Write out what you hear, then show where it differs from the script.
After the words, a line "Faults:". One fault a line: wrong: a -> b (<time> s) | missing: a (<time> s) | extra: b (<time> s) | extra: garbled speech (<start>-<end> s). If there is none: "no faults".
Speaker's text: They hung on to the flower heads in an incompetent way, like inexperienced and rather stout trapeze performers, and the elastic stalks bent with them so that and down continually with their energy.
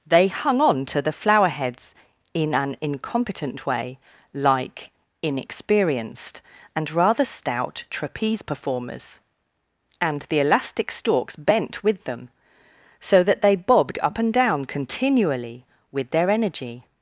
They hung on to the flower heads in an incompetent way, like inexperienced and rather stout trapeze performers, and the elastic stalks bent with them so that they bobbed up and down continually with their energy.
Faults:
extra: they bobbed up (13.4 s)